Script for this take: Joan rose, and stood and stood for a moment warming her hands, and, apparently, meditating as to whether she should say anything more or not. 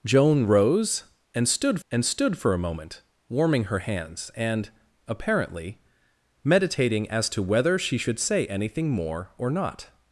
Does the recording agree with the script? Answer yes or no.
yes